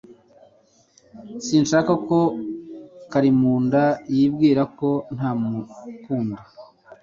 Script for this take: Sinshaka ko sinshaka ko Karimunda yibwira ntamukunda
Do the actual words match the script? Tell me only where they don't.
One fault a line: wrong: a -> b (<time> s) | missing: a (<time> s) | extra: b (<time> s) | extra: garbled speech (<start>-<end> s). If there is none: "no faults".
missing: sinshaka ko (2.2 s)
extra: ko (4.8 s)